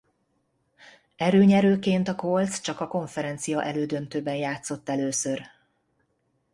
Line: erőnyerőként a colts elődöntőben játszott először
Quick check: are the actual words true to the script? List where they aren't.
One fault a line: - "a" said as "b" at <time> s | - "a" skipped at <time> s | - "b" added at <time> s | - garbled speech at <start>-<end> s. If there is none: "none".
- "csak a konferencia" added at 2.6 s